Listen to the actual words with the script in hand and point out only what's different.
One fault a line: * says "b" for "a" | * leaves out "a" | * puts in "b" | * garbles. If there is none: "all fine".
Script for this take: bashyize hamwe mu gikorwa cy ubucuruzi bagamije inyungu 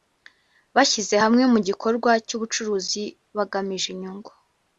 all fine